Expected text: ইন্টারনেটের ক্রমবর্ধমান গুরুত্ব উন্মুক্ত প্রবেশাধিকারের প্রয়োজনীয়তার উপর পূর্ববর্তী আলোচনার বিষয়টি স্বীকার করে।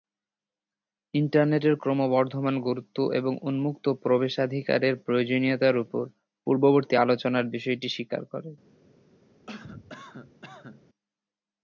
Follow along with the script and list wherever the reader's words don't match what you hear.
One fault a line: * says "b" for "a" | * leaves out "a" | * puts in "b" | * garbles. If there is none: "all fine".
* puts in "এবং"